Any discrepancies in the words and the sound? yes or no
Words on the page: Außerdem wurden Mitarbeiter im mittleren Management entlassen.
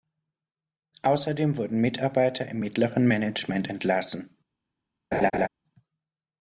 yes